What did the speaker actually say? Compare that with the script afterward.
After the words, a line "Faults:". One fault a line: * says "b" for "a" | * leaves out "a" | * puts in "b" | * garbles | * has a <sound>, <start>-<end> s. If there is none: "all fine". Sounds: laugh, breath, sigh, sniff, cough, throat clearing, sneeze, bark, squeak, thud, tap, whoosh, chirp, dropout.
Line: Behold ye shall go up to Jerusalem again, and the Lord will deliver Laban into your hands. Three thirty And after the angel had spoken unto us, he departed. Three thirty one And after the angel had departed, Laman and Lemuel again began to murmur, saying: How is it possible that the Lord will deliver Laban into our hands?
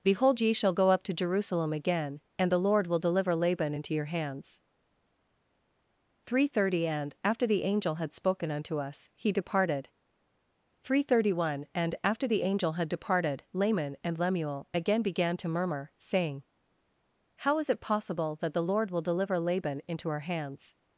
Behold ye shall go up to Jerusalem again, and the Lord will deliver Laban into your hands. Three thirty And after the angel had spoken unto us, he departed. Three thirty one And after the angel had departed, Laman and Lemuel again began to murmur, saying: How is it possible that the Lord will deliver Laban into our hands?
Faults:
all fine